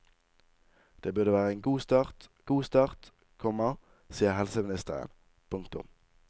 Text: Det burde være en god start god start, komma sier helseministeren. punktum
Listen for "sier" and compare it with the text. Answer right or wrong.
right